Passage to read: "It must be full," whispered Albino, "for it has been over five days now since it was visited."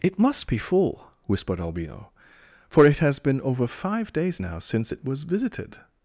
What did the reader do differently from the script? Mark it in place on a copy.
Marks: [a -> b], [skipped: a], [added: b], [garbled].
"It must be full," whispered Albino, "for it has been over five days now since it was visited."